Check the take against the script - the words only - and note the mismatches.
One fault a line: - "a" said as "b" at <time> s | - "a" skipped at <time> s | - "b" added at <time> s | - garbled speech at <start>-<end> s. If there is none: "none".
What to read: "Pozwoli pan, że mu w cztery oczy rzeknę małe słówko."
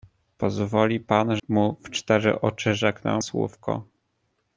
- "że" skipped at 1.4 s
- "małe" skipped at 3.2 s